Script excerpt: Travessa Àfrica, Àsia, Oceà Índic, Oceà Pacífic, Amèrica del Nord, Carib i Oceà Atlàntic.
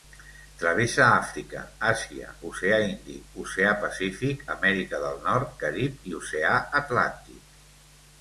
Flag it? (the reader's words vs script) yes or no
no